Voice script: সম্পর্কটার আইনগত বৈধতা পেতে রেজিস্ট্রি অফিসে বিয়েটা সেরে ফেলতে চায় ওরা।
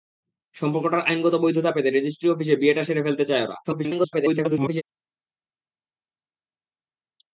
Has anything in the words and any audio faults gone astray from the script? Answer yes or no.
yes